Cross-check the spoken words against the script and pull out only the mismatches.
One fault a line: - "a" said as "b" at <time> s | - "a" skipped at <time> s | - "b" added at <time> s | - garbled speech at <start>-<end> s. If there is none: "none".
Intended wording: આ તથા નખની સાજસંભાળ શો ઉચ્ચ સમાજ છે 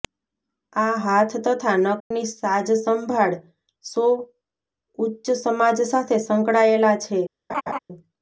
- "હાથ" added at 1.0 s
- "સાથે સંકળાયેલા" added at 5.9 s